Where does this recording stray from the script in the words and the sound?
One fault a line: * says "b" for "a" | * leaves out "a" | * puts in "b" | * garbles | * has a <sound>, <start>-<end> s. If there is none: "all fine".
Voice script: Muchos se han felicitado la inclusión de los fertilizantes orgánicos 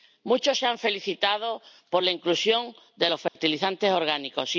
* puts in "por"
* has a dropout, 3.3-3.4 s